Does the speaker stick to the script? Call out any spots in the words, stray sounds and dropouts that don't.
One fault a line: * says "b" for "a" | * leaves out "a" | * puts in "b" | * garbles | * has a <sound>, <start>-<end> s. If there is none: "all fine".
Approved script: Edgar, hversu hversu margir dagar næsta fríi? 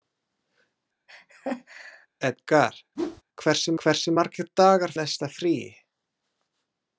* has a laugh, 1.1-2.1 s
* has a whoosh, 3.0-3.2 s